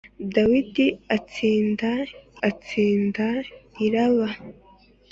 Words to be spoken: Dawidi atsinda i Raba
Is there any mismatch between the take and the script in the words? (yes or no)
yes